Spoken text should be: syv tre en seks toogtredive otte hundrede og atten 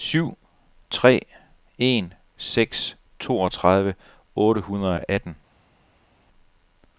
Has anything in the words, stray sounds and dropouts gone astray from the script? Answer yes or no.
no